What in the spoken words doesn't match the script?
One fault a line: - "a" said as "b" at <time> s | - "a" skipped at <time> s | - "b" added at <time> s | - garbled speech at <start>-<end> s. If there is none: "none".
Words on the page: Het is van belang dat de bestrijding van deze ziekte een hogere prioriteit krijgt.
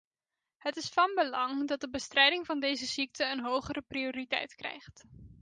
none